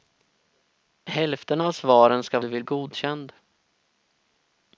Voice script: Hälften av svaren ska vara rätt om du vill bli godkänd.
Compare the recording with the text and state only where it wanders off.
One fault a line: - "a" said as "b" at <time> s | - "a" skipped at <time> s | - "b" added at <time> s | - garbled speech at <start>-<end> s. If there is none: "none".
- "vara rätt om" skipped at 2.4 s
- "bli" skipped at 2.6 s